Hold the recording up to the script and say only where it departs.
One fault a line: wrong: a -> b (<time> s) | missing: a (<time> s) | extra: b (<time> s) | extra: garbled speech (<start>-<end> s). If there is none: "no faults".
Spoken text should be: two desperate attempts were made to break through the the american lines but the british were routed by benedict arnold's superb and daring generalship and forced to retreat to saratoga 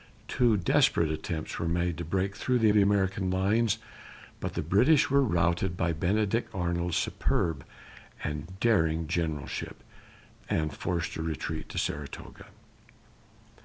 no faults